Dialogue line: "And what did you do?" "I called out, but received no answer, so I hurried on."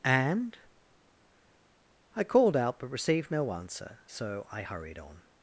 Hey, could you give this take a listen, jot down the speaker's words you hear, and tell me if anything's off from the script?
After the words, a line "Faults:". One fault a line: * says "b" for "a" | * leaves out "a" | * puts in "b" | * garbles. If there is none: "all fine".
"And?" "I called out, but received no answer, so I hurried on."
Faults:
* leaves out "what did you do"